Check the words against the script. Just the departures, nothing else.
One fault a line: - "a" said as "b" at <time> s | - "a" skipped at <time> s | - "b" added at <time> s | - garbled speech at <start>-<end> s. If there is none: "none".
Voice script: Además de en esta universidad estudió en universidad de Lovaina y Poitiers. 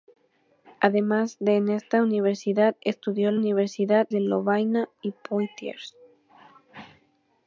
none